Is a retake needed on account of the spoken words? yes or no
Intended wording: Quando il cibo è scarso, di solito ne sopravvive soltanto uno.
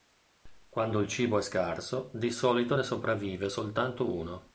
no